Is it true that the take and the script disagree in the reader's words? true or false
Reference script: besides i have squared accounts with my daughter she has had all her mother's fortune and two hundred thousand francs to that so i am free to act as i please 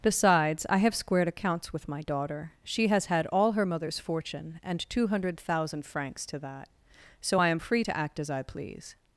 false